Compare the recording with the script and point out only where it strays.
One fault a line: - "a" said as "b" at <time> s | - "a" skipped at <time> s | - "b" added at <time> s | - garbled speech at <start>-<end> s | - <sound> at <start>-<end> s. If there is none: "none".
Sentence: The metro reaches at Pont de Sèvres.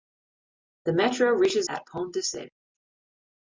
none